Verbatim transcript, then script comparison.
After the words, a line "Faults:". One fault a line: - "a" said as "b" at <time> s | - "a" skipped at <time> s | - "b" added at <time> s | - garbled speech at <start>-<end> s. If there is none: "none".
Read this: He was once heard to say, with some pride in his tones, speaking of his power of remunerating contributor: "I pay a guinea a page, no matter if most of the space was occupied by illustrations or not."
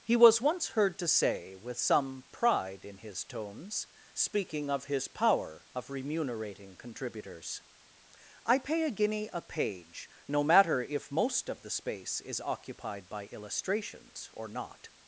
He was once heard to say, with some pride in his tones, speaking of his power of remunerating contributors: "I pay a guinea a page, no matter if most of the space is occupied by illustrations or not."
Faults:
- "contributor" said as "contributors" at 6.8 s
- "was" said as "is" at 12.2 s